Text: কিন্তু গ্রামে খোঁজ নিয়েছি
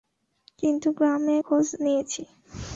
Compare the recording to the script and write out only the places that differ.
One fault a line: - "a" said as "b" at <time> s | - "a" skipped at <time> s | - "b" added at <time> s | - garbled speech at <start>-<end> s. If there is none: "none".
none